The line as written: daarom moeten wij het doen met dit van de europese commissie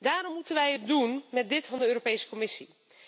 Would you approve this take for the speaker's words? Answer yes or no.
yes